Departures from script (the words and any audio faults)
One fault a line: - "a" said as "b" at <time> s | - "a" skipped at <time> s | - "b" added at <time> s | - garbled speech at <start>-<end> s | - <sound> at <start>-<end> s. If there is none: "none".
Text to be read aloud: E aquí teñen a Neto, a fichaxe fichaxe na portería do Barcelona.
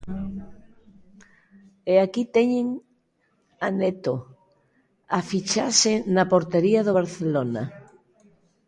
- "fichaxe" skipped at 5.9 s